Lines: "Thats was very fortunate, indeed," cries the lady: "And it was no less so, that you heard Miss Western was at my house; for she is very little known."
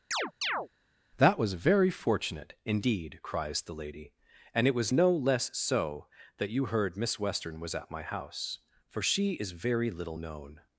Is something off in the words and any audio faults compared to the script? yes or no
yes